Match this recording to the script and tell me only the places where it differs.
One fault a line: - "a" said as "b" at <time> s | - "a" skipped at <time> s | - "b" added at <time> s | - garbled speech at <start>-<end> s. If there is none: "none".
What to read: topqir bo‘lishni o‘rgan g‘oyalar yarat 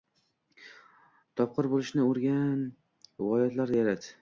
none